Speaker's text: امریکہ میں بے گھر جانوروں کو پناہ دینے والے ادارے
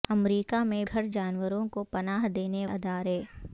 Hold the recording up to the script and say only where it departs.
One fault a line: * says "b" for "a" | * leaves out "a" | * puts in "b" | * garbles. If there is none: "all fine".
* leaves out "بے"
* leaves out "والے"